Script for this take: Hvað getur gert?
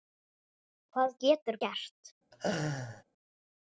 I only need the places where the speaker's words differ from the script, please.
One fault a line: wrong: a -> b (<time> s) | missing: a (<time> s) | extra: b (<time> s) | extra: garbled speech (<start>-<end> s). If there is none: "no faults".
no faults